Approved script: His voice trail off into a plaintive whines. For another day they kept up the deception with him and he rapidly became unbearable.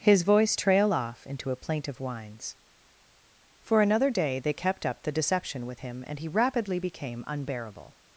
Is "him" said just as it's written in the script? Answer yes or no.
yes